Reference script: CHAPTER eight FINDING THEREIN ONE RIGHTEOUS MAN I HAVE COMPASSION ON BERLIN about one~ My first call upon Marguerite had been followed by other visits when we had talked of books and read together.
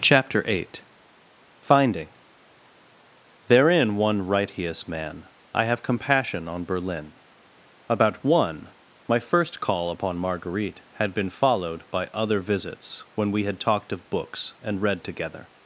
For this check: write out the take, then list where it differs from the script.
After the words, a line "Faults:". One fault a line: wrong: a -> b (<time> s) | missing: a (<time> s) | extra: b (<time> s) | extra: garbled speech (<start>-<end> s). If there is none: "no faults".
CHAPTER eight FINDING THEREIN ONE RIGHTEOUS MAN I HAVE COMPASSION ON BERLIN about one~ My first call upon Marguerite had been followed by other visits when we had talked of books and read together.
Faults:
no faults